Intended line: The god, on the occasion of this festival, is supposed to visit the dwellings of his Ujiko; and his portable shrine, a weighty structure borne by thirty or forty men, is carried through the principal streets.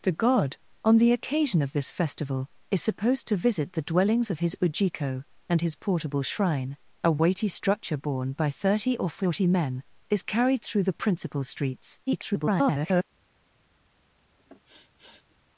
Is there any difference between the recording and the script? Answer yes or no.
yes